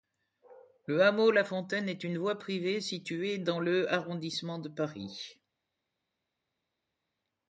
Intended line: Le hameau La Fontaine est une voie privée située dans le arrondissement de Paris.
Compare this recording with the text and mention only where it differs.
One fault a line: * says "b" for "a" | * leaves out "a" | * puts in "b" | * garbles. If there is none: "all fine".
all fine